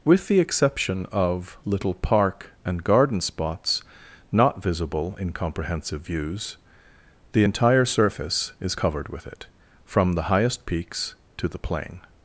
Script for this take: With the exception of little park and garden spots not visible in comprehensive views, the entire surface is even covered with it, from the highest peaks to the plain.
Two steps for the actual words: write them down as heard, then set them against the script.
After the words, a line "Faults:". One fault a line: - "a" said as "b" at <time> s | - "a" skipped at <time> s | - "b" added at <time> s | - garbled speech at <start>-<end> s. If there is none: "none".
With the exception of little park and garden spots not visible in comprehensive views, the entire surface is covered with it, from the highest peaks to the plain.
Faults:
- "even" skipped at 8.8 s